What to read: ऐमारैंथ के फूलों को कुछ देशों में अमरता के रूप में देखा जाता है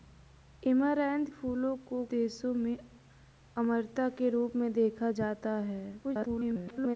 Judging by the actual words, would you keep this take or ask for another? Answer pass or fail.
fail